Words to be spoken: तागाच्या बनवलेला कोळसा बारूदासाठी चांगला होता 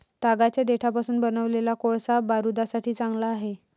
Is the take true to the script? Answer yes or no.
no